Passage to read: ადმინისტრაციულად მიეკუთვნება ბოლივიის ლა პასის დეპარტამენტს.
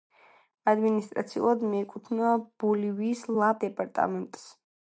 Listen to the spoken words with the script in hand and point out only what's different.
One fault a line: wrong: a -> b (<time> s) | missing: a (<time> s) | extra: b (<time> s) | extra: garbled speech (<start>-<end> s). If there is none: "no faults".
missing: პასის (3.5 s)